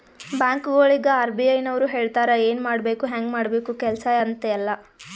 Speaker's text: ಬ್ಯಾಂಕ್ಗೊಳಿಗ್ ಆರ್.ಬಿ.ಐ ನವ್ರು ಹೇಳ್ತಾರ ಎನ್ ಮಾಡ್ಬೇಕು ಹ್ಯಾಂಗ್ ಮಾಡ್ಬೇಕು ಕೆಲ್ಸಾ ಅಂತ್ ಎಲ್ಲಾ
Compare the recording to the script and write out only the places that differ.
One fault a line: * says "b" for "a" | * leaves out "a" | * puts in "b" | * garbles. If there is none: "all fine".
all fine